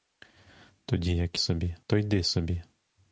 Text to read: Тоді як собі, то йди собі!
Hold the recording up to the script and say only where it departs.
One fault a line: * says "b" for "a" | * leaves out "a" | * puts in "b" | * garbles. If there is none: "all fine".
all fine